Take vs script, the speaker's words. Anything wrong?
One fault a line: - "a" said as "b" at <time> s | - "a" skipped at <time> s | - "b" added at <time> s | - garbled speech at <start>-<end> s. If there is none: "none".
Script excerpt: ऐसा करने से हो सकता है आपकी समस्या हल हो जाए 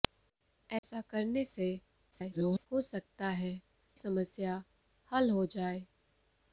- garbled speech at 2.1-2.7 s
- "आपकी" skipped at 3.5 s